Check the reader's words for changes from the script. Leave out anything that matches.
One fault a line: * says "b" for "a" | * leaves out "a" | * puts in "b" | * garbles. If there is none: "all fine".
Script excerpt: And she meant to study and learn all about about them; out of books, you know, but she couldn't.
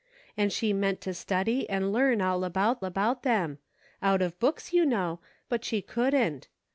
all fine